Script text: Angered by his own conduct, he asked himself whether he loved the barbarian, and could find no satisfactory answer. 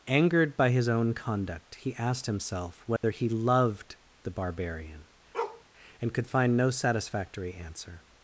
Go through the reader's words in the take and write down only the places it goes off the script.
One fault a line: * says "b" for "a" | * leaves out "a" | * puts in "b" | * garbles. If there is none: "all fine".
all fine